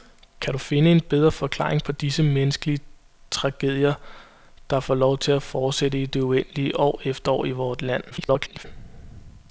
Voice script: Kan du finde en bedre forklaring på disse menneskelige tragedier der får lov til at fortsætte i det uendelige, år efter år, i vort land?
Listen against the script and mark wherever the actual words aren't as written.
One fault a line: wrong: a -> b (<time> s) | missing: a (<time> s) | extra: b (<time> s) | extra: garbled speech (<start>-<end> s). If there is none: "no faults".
extra: garbled speech (8.1-8.6 s)